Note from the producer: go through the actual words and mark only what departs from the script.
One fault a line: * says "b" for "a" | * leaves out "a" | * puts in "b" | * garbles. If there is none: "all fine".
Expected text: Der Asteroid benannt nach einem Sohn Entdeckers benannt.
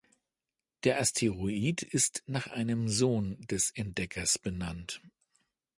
* says "ist" for "benannt"
* puts in "des"